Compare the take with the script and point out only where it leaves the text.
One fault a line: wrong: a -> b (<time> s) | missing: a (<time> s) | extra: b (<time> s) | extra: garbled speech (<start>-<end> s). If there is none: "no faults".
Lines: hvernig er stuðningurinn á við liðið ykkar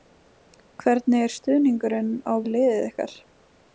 no faults